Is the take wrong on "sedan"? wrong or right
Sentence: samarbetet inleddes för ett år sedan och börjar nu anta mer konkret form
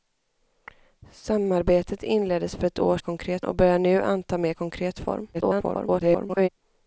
wrong